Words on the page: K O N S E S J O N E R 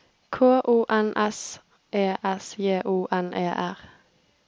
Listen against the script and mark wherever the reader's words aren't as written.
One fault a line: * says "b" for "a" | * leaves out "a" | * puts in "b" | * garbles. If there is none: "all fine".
all fine